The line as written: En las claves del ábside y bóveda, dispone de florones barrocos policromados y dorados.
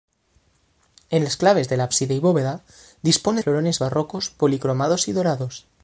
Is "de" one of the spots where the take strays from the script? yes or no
yes